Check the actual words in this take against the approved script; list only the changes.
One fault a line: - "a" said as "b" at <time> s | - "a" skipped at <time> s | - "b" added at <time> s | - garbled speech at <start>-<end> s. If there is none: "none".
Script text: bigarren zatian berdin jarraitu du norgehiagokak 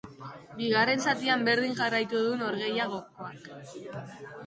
none